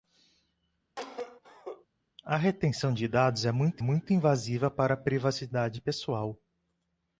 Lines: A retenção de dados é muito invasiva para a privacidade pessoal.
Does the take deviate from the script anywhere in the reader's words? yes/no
yes